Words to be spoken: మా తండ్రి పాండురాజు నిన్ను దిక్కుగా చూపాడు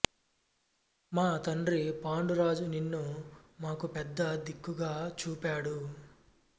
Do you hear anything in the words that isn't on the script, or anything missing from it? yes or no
yes